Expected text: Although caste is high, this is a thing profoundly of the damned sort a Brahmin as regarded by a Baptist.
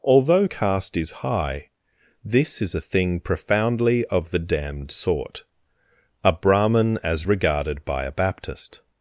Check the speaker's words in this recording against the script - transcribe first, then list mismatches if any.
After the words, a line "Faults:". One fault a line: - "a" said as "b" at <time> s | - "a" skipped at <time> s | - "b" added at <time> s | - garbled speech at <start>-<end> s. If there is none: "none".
Although caste is high, this is a thing profoundly of the damned sort a Brahmin as regarded by a Baptist.
Faults:
none